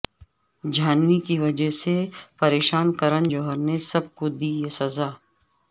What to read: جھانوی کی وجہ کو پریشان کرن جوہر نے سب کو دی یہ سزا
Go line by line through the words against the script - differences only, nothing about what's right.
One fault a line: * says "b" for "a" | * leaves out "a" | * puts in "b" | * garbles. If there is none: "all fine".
* says "سے" for "کو"